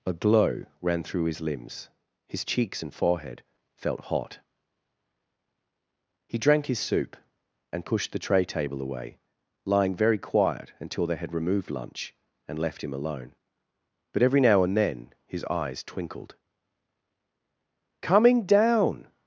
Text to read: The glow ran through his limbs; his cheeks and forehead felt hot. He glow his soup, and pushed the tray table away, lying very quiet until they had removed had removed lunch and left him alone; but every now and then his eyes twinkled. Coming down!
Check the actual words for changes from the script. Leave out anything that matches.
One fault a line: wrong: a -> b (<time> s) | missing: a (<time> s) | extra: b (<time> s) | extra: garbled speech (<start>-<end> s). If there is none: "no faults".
wrong: The -> A (0.0 s)
wrong: glow -> drank (6.4 s)
missing: had removed (11.7 s)